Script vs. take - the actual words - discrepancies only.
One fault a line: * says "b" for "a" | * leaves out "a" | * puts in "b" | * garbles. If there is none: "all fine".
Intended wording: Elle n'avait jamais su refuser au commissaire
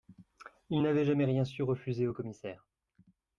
* says "Il" for "Elle"
* puts in "rien"